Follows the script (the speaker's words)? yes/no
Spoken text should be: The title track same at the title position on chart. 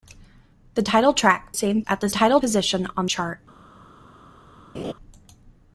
yes